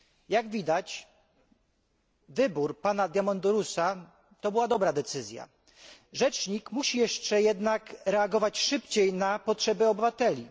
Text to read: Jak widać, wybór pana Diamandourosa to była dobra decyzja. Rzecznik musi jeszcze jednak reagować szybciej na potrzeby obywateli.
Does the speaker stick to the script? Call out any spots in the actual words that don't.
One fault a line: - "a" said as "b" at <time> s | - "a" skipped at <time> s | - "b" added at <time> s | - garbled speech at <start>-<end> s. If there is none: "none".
none